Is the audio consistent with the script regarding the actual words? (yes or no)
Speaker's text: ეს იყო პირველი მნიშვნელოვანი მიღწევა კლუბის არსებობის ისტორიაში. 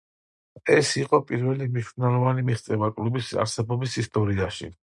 yes